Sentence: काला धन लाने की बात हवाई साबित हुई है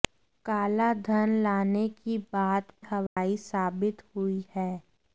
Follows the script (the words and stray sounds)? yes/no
no